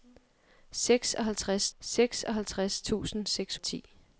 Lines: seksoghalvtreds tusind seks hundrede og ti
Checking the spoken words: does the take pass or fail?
fail